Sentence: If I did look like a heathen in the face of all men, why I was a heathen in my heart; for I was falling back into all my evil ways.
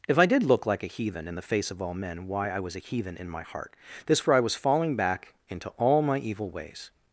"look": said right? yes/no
yes